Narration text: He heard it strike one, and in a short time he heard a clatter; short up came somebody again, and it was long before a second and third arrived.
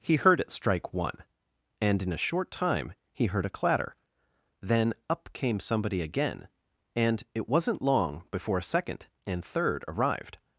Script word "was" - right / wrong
wrong